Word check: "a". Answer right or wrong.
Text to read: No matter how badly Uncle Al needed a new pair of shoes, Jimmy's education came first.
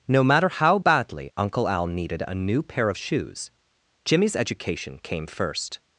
right